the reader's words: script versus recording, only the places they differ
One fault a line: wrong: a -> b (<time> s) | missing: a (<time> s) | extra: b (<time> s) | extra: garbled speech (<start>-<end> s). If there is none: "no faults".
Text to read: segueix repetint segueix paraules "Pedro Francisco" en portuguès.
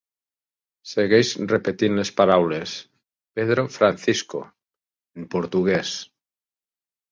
wrong: segueix -> les (2.0 s)